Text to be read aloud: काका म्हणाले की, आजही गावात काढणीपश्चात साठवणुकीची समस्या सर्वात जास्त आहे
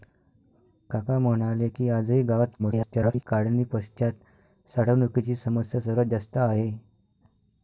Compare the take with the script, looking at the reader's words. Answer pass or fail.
fail